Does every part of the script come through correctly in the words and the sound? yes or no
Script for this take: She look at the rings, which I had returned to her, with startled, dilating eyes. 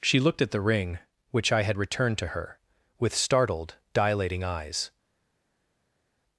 no